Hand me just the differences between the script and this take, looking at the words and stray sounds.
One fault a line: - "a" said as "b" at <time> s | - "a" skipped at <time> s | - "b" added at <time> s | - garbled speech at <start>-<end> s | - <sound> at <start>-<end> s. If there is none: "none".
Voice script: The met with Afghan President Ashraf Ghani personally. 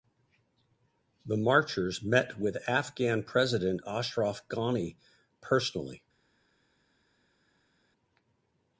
- "marchers" added at 1.4 s